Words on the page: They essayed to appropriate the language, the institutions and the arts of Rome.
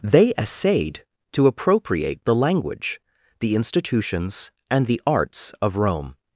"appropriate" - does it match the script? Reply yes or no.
yes